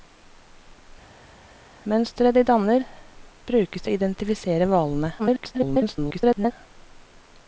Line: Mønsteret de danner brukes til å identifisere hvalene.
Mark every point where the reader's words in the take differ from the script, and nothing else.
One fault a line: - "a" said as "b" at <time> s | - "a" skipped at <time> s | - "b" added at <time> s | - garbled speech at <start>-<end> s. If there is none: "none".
- "til" skipped at 3.8 s
- garbled speech at 5.2-6.5 s